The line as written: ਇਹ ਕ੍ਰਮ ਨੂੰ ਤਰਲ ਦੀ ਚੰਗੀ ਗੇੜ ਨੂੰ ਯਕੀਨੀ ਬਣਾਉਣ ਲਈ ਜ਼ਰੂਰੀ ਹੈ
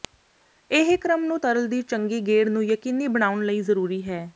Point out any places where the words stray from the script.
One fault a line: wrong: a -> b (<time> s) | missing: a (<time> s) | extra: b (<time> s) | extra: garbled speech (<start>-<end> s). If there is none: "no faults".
no faults